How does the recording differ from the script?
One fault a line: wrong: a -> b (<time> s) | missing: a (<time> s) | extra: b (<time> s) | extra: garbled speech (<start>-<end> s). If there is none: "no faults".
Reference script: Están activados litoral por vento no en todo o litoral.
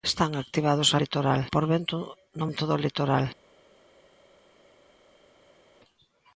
no faults